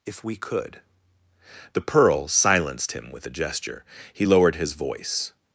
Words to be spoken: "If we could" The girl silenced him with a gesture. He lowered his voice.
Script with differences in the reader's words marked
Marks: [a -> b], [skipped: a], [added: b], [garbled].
"If we could" The [girl -> pearl] silenced him with a gesture. He lowered his voice.